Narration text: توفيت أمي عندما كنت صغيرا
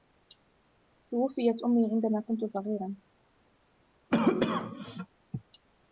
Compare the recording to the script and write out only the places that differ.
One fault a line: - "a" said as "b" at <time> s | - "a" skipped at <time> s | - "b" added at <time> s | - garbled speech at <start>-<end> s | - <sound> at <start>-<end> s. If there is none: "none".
- cough at 4.1-5.1 s